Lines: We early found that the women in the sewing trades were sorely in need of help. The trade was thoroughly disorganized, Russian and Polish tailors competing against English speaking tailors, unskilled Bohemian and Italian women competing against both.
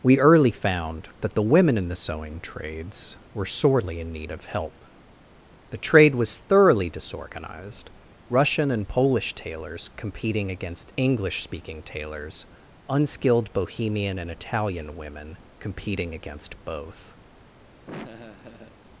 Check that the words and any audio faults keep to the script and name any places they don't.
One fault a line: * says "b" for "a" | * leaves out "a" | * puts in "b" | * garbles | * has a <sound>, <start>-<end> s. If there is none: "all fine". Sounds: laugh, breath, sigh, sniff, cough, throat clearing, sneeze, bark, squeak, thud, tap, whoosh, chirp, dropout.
* has a laugh, 17.9-18.8 s